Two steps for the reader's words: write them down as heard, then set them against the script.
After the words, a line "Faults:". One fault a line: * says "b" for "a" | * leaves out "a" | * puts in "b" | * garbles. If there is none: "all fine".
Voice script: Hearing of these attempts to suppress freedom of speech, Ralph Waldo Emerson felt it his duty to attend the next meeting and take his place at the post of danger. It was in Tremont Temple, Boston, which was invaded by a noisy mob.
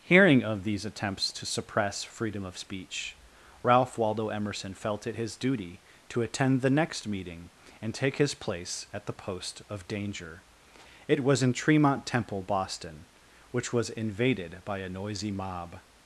Hearing of these attempts to suppress freedom of speech, Ralph Waldo Emerson felt it his duty to attend the next meeting and take his place at the post of danger. It was in Tremont Temple, Boston, which was invaded by a noisy mob.
Faults:
all fine